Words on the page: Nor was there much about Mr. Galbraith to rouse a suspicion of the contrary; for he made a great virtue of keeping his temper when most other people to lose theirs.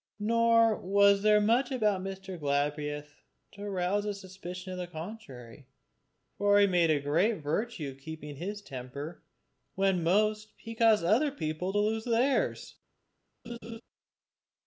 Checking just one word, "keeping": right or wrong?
right